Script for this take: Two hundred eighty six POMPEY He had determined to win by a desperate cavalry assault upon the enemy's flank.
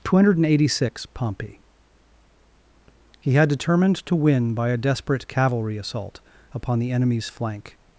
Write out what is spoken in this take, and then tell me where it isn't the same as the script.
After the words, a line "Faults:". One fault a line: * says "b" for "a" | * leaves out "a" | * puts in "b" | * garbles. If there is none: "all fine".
Two hundred eighty six POMPEY He had determined to win by a desperate cavalry assault upon the enemy's flank.
Faults:
all fine